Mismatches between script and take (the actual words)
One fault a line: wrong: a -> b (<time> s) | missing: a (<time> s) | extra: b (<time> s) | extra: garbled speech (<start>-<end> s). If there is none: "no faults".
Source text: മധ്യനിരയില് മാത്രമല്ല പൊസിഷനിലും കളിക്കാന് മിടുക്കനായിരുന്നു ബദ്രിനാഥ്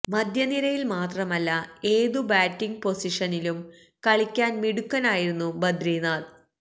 extra: ഏതു ബാറ്റിങ് (1.9 s)